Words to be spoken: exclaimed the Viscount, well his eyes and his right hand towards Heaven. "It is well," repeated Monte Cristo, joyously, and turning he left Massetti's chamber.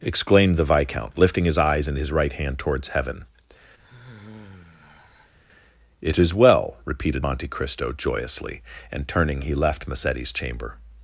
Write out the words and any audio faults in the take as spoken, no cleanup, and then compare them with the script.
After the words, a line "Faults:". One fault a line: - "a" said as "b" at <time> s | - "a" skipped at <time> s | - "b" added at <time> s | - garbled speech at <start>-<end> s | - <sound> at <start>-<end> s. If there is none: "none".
exclaimed the Viscount, lifting his eyes and his right hand towards Heaven. "It is well," repeated Monte Cristo, joyously, and turning he left Massetti's chamber.
Faults:
- "well" said as "lifting" at 1.2 s
- sigh at 3.8-5.3 s